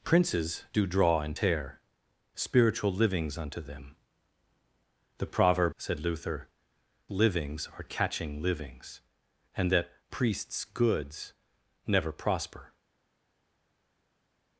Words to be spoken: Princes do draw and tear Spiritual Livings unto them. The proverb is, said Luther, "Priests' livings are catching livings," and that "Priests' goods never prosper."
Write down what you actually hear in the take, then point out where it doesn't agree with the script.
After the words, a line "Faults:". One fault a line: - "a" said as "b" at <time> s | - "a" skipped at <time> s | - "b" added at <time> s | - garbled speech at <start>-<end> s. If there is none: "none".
Princes do draw and tear Spiritual Livings unto them. The proverb said Luther' "Livings are catching livings," and that "Priests' goods never prosper."
Faults:
- "is" skipped at 5.7 s
- "Priests" skipped at 6.5 s